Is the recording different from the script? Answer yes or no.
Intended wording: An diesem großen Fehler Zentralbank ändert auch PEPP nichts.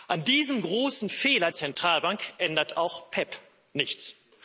no